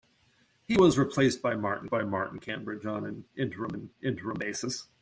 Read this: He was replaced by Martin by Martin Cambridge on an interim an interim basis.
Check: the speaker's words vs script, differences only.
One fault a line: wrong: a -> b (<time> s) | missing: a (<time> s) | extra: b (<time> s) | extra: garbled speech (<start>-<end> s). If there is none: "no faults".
no faults